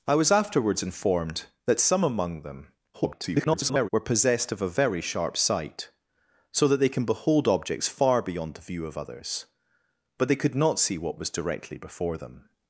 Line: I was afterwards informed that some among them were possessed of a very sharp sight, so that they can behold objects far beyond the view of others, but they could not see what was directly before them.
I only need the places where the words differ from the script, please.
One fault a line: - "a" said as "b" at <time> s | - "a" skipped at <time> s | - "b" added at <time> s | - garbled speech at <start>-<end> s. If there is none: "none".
- garbled speech at 2.9-3.9 s